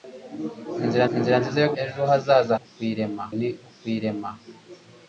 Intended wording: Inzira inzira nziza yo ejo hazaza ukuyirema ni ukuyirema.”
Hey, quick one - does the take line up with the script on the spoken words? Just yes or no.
yes